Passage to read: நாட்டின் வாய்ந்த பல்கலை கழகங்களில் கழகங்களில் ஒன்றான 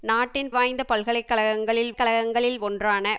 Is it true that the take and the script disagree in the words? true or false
false